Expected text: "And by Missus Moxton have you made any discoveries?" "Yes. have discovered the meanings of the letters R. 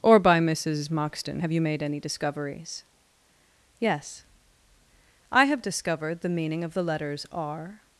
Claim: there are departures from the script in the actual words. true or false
true